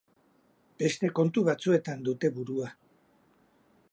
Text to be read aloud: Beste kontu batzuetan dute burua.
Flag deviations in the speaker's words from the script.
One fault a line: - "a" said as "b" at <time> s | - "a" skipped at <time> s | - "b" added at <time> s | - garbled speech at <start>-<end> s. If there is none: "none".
none